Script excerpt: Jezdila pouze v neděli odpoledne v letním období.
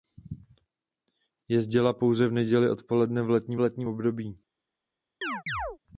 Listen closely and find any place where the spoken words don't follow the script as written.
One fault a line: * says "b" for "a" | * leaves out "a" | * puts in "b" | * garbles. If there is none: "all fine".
* puts in "letním"